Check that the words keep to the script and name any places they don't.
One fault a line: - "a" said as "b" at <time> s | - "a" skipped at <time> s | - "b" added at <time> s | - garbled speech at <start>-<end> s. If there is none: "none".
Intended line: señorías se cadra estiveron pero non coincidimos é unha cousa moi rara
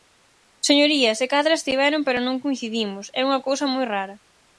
none